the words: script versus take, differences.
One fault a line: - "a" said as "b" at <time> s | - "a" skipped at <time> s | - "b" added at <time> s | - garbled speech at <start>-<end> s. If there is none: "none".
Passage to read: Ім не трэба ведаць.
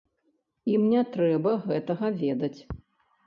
- "гэтага" added at 1.7 s